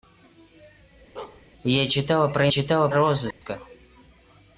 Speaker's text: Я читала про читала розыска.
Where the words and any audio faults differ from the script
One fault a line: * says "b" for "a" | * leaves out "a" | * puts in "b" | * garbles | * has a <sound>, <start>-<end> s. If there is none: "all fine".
* has a bark, 1.2-1.4 s
* has a dropout, 3.3-3.4 s